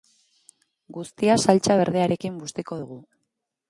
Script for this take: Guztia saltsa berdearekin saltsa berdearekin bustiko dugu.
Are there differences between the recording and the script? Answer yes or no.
yes